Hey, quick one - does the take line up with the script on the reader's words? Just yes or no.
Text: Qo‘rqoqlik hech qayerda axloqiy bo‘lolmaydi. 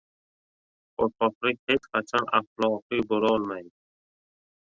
no